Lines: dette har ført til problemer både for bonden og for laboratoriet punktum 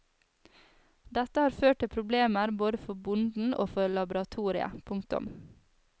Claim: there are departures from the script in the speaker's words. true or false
false